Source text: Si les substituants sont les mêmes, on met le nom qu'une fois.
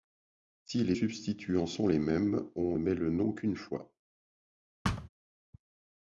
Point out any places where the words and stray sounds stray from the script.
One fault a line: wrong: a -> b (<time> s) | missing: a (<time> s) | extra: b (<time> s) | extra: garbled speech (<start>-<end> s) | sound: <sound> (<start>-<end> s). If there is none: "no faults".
sound: thud (4.8-5.1 s)